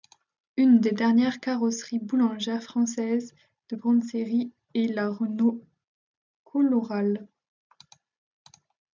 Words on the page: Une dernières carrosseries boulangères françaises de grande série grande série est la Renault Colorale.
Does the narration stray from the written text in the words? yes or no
yes